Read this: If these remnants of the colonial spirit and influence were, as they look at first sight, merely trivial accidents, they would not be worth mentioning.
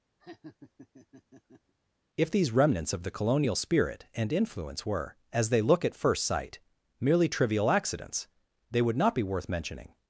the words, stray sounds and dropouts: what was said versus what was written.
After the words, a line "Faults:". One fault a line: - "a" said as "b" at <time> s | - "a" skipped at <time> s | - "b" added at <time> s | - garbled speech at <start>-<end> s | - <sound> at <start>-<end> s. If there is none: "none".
If these remnants of the colonial spirit and influence were, as they look at first sight, merely trivial accidents, they would not be worth mentioning.
Faults:
- laugh at 0.2-1.7 s